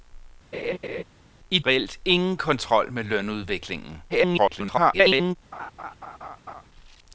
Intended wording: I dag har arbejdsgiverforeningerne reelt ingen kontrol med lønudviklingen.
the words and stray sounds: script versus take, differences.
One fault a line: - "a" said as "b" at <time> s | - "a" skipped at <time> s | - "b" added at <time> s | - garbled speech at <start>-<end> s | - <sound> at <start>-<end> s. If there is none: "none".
- laugh at 0.5-1.0 s
- "dag har arbejdsgiverforeningerne" skipped at 1.6 s
- garbled speech at 4.1-5.4 s
- laugh at 5.5-6.7 s